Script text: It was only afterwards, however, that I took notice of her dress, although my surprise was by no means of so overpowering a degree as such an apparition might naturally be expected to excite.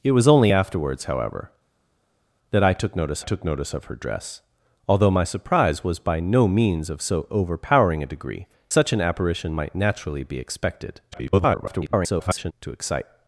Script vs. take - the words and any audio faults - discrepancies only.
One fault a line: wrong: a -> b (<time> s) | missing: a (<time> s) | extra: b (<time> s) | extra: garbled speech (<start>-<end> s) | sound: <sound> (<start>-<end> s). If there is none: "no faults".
extra: took notice (3.2 s)
missing: as (8.5 s)
extra: garbled speech (11.1-12.5 s)